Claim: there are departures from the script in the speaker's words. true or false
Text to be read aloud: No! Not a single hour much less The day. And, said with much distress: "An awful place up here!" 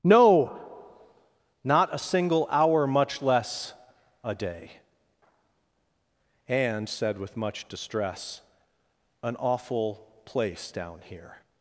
true